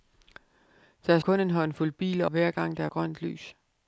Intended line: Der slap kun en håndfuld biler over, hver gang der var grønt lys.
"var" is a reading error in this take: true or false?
true